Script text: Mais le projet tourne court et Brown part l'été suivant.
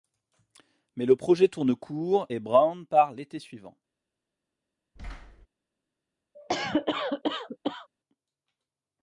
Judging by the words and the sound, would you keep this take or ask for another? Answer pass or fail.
fail